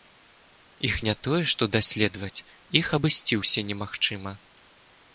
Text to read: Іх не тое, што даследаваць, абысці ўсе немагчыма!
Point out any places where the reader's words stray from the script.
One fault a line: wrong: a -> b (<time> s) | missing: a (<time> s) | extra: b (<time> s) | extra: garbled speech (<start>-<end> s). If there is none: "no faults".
extra: іх (2.8 s)